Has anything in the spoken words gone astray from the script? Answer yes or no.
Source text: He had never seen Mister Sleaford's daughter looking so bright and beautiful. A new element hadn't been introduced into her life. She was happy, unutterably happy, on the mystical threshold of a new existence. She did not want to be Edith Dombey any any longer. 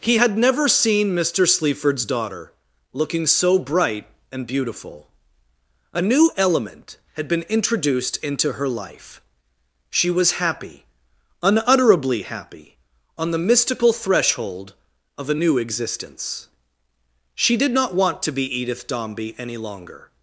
yes